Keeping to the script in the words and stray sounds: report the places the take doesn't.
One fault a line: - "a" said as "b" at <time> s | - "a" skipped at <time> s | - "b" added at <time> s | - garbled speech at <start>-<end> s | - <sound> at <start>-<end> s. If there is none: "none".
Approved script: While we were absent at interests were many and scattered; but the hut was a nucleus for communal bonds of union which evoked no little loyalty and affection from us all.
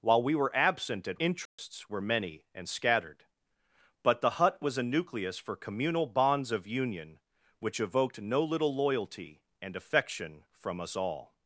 - dropout at 1.5-1.6 s